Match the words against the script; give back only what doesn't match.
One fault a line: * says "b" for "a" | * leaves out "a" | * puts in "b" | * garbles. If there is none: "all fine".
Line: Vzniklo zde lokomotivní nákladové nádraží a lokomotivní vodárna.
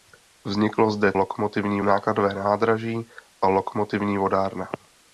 all fine